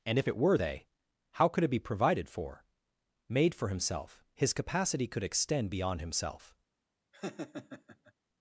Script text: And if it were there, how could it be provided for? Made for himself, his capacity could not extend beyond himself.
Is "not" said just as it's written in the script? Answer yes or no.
no